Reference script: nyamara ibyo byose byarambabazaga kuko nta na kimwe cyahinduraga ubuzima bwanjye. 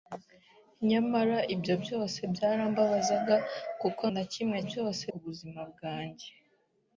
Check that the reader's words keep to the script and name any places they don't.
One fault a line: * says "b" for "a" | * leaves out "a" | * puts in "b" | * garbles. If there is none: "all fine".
* leaves out "nta"
* says "byose" for "cyahinduraga"